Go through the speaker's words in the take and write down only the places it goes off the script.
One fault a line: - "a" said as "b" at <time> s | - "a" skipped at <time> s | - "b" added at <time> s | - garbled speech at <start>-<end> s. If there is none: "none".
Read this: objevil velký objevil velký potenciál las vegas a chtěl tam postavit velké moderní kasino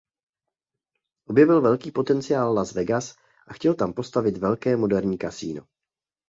- "objevil velký" skipped at 1.9 s